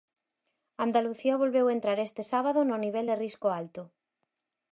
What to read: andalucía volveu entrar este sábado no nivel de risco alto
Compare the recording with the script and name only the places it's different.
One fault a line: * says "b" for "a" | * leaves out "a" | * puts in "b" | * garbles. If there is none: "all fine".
all fine